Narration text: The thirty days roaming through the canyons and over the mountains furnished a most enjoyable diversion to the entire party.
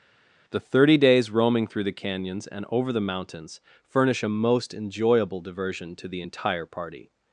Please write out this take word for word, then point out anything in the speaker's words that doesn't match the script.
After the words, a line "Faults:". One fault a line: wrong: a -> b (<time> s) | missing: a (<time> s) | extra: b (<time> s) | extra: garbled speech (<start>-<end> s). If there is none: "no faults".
The thirty days roaming through the canyons and over the mountains furnish a most enjoyable diversion to the entire party.
Faults:
wrong: furnished -> furnish (3.9 s)